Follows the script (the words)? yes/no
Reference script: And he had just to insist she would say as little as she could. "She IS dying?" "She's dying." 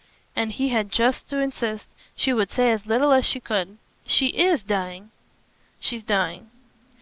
yes